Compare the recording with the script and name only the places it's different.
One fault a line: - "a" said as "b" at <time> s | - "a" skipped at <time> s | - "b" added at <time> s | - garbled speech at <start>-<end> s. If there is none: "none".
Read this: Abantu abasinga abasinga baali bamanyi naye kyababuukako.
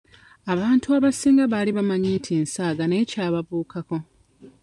- "abasinga" skipped at 1.4 s
- "nti nsaaga" added at 2.2 s